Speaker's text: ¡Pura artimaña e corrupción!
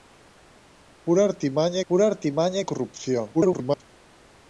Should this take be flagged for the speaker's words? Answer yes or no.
yes